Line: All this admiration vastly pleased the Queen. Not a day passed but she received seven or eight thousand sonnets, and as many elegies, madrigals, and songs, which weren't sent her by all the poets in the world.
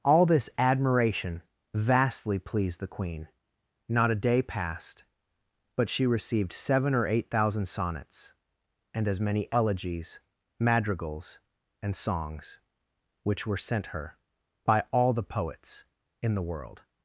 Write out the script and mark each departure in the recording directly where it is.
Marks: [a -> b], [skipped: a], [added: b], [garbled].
All this admiration vastly pleased the Queen. Not a day passed but she received seven or eight thousand sonnets, and as many elegies, madrigals, and songs, which [weren't -> were] sent her by all the poets in the world.